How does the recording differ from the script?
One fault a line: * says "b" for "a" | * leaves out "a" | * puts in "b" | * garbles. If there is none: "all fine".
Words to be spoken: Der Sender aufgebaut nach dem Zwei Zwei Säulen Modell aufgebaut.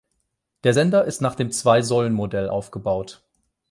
* says "ist" for "aufgebaut"
* leaves out "Zwei"